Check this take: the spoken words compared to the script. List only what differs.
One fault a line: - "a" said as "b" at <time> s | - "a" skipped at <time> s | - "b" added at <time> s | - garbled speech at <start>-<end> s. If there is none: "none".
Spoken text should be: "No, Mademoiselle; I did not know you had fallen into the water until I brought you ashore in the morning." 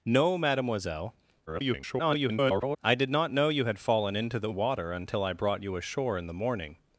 - garbled speech at 1.5-2.8 s